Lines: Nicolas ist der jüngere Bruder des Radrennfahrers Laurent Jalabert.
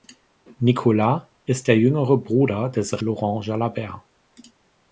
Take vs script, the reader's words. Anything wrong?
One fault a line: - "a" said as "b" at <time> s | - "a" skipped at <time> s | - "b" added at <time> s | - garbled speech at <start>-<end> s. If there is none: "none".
- "Radrennfahrers" skipped at 3.0 s